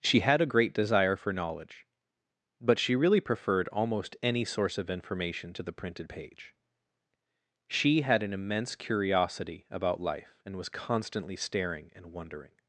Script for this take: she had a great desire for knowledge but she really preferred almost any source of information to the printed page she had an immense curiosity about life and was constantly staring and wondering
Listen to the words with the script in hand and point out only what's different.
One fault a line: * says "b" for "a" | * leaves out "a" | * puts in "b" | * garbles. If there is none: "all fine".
all fine